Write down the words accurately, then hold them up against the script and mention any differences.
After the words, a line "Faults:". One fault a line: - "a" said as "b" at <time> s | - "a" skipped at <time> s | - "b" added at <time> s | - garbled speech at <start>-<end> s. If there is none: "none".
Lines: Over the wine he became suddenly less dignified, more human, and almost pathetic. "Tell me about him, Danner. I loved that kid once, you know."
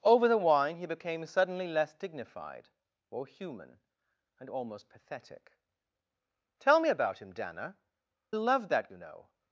Over the wine he became suddenly less dignified, more human, and almost pathetic. "Tell me about him, Danner. loved that you know."
Faults:
- "I" skipped at 7.8 s
- "kid once" skipped at 8.9 s